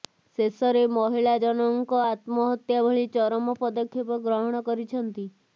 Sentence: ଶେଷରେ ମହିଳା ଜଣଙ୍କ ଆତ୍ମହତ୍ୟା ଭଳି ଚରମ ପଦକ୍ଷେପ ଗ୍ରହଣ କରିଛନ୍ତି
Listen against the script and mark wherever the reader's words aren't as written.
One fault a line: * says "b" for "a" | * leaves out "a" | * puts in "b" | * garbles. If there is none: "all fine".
all fine